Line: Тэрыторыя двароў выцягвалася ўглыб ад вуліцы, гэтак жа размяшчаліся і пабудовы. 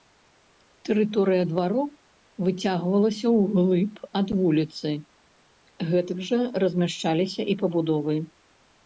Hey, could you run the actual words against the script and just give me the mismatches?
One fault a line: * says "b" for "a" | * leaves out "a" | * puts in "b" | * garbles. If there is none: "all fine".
all fine